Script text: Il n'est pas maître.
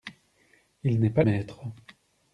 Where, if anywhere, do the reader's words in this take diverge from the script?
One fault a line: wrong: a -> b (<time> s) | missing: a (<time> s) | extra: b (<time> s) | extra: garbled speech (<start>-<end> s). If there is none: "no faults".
no faults